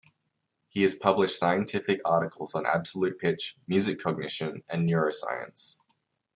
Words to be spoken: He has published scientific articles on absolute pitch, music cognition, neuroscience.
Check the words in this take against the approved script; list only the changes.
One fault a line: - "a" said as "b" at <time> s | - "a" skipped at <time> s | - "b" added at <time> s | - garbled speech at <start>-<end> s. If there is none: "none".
- "and" added at 4.7 s